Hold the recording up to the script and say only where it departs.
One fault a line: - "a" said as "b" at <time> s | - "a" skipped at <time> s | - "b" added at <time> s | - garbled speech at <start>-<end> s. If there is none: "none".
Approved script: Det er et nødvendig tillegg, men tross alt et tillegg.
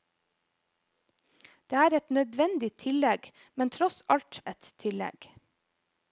none